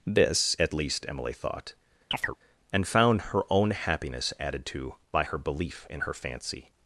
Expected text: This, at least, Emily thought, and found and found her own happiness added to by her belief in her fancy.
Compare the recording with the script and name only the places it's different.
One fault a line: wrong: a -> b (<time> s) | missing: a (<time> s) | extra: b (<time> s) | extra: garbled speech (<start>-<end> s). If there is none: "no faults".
missing: and found (3.3 s)